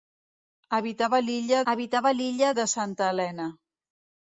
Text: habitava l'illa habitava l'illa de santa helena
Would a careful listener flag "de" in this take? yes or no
no